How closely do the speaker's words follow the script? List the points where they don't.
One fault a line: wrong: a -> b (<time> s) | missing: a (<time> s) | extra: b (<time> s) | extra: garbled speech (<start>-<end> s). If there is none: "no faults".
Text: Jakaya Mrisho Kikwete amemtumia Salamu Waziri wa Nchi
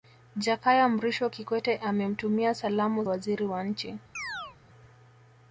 no faults